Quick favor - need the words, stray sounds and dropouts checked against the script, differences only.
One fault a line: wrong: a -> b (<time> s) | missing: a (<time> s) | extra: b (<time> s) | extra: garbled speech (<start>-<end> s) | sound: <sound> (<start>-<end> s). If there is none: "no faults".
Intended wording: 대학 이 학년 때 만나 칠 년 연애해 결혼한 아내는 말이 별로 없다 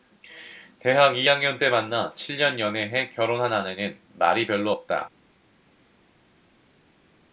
no faults